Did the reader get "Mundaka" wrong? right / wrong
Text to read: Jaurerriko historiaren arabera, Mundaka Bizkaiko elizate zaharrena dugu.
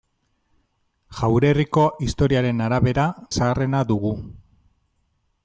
wrong